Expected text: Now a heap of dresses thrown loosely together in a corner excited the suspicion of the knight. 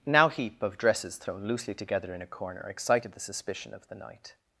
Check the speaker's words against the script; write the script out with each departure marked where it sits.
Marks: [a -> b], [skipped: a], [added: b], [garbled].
Now [skipped: a] heap of dresses thrown loosely together in a corner excited the suspicion of the knight.